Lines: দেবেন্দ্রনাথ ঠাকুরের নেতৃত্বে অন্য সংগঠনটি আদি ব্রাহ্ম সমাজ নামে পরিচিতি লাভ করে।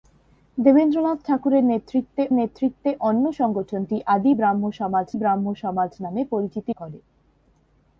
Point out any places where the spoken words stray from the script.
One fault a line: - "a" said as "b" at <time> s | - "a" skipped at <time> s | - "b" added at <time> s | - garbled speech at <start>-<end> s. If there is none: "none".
- "নেতৃত্বে" added at 2.3 s
- "ব্রাহ্ম সমাজ" added at 5.1 s
- "লাভ" skipped at 6.7 s